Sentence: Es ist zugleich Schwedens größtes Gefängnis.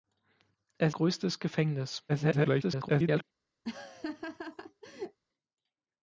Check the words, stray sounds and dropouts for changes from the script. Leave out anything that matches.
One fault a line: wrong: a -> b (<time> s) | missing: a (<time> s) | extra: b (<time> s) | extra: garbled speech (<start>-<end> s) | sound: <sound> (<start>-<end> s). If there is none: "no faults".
missing: ist zugleich Schwedens (0.9 s)
extra: garbled speech (2.1-3.2 s)
sound: laugh (3.6-5.2 s)